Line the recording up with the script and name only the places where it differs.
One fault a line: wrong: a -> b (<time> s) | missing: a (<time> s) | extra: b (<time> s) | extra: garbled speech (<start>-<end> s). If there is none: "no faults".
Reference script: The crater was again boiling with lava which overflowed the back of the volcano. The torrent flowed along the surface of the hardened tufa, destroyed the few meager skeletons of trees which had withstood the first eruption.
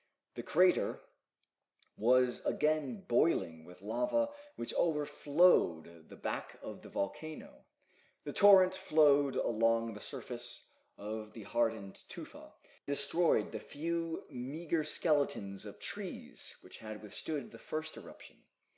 no faults